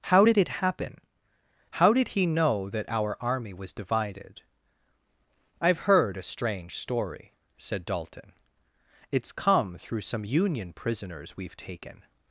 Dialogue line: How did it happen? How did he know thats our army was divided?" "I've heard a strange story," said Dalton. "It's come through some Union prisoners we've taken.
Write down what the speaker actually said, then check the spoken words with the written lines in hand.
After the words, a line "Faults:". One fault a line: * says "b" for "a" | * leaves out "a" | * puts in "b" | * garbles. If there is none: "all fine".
How did it happen? How did he know that our army was divided?" "I've heard a strange story," said Dalton. "It's come through some Union prisoners we've taken.
Faults:
* says "that" for "thats"